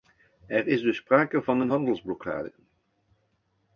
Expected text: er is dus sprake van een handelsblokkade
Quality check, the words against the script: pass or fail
pass